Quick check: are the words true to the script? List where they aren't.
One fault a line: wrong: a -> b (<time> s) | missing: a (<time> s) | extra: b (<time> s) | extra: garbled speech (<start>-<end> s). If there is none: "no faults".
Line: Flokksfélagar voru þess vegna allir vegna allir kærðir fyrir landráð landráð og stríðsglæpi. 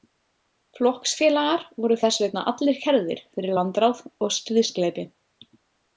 missing: vegna allir (2.8 s)
missing: landráð (4.0 s)